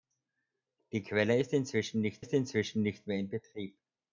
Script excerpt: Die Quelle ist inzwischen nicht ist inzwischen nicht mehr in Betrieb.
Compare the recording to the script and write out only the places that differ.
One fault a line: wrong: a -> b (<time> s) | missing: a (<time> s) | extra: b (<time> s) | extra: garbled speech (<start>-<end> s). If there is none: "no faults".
no faults